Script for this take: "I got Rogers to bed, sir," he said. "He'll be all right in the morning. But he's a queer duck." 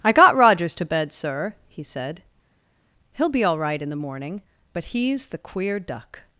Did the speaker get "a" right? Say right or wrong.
wrong